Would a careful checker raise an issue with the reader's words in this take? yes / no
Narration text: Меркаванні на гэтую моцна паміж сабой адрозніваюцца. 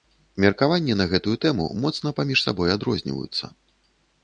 yes